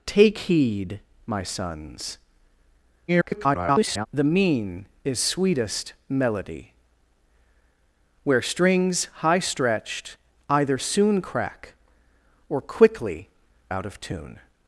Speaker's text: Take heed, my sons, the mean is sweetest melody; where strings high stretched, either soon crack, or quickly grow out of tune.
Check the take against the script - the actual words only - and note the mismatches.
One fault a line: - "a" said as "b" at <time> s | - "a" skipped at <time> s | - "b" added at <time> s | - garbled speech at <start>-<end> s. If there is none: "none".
- garbled speech at 3.1-4.1 s
- "grow" skipped at 13.3 s